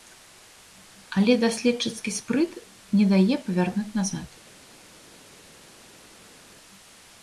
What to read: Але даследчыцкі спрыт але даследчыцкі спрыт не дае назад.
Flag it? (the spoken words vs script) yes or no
yes